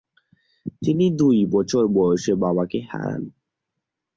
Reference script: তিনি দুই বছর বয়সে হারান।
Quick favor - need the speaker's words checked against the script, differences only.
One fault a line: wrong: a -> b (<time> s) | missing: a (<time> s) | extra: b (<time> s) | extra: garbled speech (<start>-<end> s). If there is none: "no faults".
extra: বাবাকে (2.4 s)